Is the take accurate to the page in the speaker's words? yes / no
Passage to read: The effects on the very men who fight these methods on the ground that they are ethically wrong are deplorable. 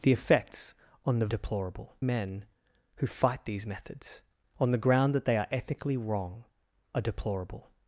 no